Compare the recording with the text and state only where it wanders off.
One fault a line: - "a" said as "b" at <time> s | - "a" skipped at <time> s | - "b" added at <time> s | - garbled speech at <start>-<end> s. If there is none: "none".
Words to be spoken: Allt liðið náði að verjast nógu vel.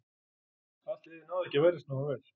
- "ekki" added at 1.5 s